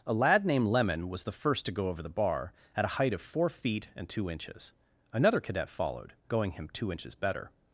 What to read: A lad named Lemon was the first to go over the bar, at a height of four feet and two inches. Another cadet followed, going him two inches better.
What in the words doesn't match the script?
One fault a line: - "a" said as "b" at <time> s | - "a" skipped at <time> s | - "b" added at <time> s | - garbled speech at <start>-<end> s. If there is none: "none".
none